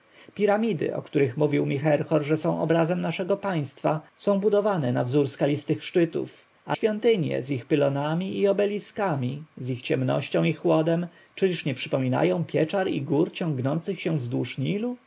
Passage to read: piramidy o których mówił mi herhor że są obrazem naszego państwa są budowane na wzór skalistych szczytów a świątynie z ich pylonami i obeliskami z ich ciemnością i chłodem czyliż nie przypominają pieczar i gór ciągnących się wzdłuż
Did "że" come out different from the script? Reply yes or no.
no